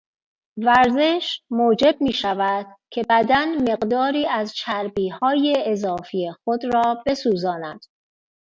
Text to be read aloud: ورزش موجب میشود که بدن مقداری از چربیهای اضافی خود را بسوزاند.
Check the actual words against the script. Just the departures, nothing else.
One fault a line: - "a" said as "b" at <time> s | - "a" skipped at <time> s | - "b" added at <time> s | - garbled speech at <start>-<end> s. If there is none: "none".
none